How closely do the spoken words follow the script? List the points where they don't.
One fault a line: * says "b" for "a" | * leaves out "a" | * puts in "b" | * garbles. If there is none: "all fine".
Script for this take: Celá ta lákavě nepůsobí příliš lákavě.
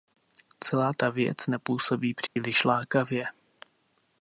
* says "věc" for "lákavě"